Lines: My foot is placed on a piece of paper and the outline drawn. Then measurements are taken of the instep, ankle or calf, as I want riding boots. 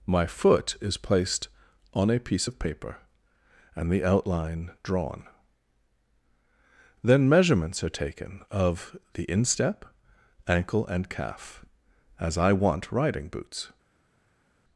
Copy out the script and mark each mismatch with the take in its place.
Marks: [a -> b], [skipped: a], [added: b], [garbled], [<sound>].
My foot is placed on a piece of paper and the outline drawn. Then measurements are taken of the instep, ankle [or -> and] calf, as I want riding boots.